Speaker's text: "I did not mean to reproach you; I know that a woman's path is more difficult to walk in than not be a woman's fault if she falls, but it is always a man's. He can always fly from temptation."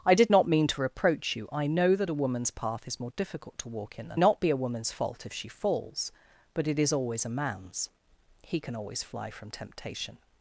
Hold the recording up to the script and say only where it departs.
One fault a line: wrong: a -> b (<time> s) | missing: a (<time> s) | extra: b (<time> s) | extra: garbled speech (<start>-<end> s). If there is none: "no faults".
no faults